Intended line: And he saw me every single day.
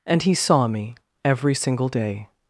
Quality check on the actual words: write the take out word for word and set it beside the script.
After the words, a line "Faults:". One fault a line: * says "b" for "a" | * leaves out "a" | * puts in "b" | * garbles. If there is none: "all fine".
And he saw me every single day.
Faults:
all fine